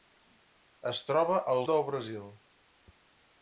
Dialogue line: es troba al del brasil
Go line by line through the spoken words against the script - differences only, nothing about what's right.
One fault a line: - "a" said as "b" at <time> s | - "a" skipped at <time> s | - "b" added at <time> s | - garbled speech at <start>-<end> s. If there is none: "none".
none